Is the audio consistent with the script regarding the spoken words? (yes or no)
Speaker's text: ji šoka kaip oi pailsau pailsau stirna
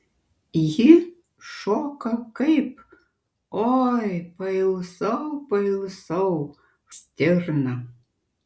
yes